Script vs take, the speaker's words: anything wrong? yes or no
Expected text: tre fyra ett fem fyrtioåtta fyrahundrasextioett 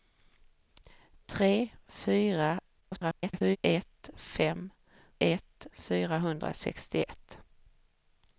yes